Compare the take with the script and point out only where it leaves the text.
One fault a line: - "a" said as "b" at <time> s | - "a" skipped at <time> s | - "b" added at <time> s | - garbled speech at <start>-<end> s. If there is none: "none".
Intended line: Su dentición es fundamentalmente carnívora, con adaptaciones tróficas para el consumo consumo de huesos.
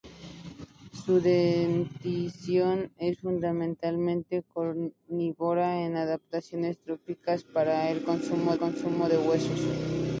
none